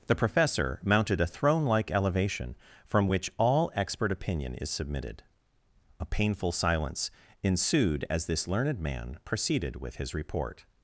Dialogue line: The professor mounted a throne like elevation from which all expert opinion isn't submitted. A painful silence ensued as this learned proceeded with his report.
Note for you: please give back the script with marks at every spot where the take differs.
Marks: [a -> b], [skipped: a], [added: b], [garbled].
The professor mounted a throne like elevation from which all expert opinion [isn't -> is] submitted. A painful silence ensued as this learned [added: man] proceeded with his report.